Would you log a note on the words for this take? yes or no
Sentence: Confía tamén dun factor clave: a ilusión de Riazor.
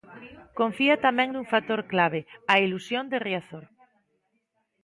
no